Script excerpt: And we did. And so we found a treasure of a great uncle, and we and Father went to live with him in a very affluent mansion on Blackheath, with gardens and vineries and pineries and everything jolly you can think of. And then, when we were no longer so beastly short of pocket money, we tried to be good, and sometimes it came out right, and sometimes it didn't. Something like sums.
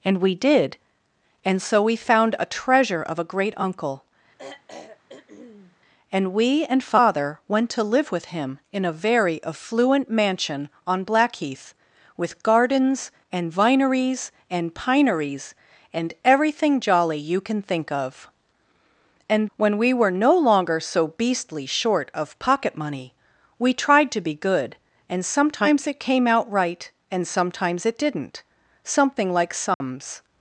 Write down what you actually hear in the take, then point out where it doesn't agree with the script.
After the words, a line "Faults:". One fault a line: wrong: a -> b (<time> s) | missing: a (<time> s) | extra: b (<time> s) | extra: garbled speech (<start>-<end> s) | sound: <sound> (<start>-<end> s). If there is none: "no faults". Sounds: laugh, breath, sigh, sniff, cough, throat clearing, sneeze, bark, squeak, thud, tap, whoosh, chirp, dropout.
And we did. And so we found a treasure of a great uncle, and we and Father went to live with him in a very affluent mansion on Blackheath, with gardens and vineries and pineries and everything jolly you can think of. And when we were no longer so beastly short of pocket money, we tried to be good, and sometimes it came out right, and sometimes it didn't. Something like sums.
Faults:
sound: throat clearing (4.4-5.8 s)
missing: then (19.5 s)
sound: dropout (29.7-29.8 s)